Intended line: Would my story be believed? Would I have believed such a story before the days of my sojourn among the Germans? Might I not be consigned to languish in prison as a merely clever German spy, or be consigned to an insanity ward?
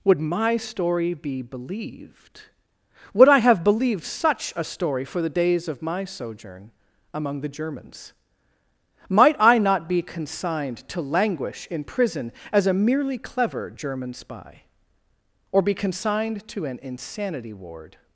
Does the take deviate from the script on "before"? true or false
true